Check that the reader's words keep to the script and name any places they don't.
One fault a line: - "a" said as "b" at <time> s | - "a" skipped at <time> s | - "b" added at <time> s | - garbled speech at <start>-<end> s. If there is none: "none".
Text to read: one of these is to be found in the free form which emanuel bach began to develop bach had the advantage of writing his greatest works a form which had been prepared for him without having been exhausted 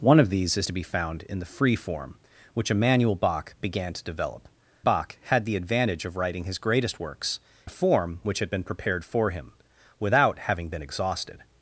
none